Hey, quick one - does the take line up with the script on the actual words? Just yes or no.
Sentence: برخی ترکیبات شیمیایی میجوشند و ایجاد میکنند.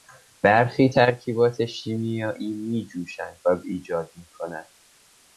yes